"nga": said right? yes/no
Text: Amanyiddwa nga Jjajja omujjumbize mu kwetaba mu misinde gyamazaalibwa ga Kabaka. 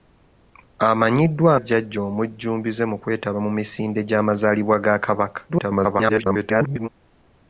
no